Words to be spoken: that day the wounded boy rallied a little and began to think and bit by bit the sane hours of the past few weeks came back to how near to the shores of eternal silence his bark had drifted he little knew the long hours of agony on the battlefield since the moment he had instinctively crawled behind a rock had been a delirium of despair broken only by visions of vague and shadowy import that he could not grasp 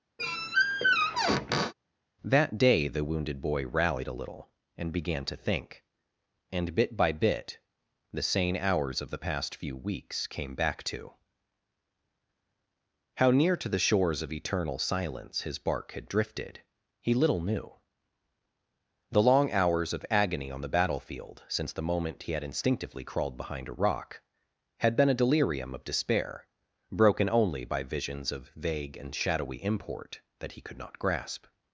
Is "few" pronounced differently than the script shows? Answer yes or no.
no